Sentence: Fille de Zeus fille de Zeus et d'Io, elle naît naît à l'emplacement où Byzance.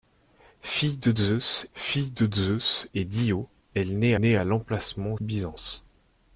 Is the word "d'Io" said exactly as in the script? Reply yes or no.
yes